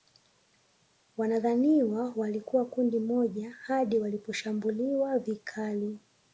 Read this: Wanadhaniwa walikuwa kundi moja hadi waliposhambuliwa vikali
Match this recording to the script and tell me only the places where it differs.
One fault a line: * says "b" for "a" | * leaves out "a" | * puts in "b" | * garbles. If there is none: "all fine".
all fine